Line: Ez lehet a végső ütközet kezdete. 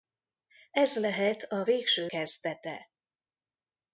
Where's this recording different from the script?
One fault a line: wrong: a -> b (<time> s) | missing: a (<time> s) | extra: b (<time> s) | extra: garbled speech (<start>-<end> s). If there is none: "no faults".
missing: ütközet (2.1 s)